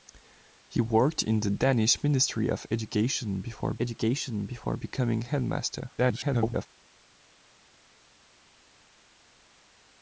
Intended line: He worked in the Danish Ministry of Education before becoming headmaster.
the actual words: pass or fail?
fail